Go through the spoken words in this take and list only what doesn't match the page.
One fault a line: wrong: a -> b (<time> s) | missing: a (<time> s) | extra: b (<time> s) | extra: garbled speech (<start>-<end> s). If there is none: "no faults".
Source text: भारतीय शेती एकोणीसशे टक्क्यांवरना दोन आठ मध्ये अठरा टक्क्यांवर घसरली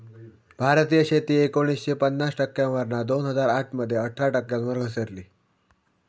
extra: पन्नास (1.9 s)
extra: हजार (3.3 s)